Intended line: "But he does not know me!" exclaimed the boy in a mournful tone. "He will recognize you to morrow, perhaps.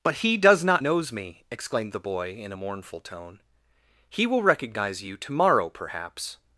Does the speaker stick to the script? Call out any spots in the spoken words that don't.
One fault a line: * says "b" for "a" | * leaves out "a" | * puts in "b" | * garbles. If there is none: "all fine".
* says "knows" for "know"